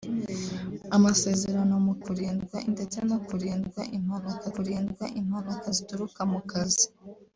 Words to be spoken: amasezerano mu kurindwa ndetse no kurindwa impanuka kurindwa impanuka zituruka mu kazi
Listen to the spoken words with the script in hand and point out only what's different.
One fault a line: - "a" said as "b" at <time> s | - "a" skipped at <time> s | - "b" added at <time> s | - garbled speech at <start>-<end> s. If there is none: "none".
none